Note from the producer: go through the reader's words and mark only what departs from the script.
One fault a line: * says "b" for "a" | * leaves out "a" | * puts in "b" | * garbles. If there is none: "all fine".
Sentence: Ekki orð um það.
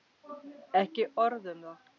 all fine